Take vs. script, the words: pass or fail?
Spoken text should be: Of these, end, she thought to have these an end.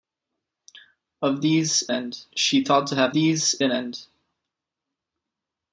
pass